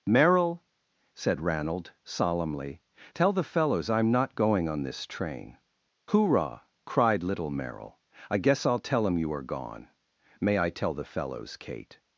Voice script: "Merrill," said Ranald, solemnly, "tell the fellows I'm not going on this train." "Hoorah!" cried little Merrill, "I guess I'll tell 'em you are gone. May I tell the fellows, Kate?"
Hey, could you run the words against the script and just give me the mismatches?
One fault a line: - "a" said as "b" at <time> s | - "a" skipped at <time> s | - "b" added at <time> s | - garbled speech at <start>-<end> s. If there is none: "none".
none